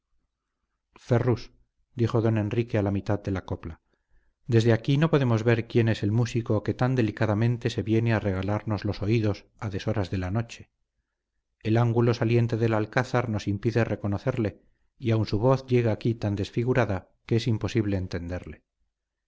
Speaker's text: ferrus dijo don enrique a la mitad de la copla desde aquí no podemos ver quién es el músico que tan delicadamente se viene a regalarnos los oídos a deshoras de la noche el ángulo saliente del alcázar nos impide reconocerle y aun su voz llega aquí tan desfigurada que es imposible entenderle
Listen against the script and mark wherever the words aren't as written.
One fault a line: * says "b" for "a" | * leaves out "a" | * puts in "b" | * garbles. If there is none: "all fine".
all fine